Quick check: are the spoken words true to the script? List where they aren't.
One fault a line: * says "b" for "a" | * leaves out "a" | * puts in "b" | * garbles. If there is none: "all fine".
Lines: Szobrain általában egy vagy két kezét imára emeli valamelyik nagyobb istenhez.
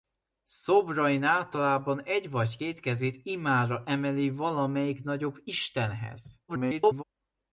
* garbles